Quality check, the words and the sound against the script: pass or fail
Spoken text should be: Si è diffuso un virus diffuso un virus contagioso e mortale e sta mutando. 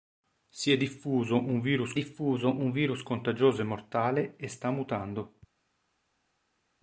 pass